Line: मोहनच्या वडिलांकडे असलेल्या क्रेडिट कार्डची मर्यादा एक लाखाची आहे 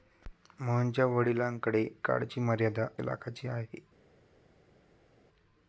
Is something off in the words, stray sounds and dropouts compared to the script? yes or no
yes